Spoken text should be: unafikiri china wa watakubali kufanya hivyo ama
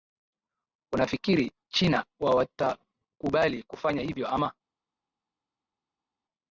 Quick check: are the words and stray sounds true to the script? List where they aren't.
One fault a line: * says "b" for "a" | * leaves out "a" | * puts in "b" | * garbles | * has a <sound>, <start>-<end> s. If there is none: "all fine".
all fine